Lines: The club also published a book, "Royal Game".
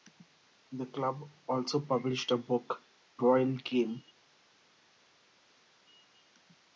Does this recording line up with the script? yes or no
yes